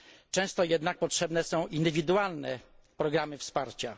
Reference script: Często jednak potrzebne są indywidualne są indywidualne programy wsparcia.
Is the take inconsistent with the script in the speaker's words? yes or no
yes